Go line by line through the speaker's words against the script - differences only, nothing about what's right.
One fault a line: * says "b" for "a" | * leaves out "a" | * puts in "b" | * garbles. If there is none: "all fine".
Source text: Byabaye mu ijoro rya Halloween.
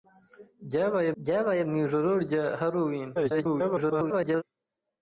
* puts in "byabaye"
* garbles